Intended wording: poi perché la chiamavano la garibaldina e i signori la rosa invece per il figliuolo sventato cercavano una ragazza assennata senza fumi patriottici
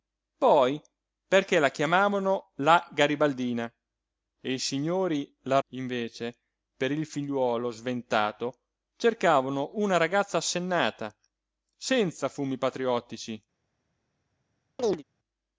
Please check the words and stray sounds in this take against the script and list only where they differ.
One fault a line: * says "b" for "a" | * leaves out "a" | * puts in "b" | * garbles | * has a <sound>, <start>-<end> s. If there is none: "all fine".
* leaves out "rosa"
* has a chirp, 14.8-15.0 s